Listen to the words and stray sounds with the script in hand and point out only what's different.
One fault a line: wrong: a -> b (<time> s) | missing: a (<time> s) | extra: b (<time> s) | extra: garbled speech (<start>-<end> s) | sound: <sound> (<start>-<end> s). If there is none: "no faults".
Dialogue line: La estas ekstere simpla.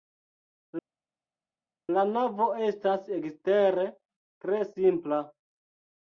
extra: navo (2.1 s)
extra: tre (4.5 s)